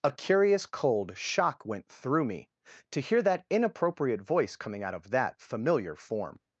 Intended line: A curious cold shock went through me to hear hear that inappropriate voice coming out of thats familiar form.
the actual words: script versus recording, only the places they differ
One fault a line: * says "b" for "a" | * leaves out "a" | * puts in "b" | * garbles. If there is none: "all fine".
* leaves out "hear"
* says "that" for "thats"